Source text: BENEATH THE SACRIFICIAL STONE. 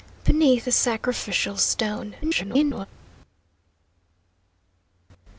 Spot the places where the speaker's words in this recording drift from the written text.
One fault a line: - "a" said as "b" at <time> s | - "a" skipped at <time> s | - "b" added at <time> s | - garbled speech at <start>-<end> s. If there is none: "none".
- garbled speech at 2.2-2.9 s